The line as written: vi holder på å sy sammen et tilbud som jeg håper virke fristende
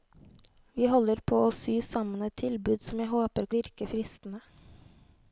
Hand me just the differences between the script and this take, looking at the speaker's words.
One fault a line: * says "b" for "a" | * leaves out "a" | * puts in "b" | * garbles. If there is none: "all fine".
all fine